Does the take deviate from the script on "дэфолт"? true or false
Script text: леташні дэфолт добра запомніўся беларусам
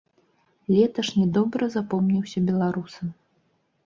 true